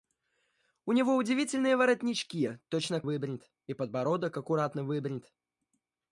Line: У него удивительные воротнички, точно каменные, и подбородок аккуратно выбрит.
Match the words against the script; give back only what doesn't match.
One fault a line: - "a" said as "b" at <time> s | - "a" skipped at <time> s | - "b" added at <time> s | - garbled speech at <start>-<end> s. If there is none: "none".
- "каменные" said as "выбрит" at 3.0 s